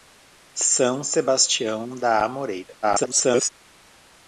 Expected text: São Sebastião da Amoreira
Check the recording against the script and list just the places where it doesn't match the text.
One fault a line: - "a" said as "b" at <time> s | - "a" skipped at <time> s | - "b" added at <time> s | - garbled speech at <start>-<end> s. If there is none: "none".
- garbled speech at 2.8-3.5 s